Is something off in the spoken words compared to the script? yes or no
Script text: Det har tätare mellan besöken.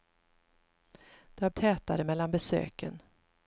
no